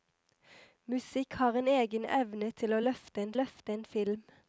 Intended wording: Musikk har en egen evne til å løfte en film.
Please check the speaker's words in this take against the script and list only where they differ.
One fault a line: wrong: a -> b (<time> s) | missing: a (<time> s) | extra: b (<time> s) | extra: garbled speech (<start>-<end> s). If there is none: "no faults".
extra: løfte en (3.3 s)